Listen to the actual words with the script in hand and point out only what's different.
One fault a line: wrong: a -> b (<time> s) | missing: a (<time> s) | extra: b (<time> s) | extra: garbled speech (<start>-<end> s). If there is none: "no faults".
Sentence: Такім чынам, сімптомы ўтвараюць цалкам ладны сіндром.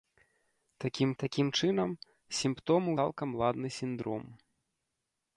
extra: такім (1.2 s)
missing: ўтвараюць (2.9 s)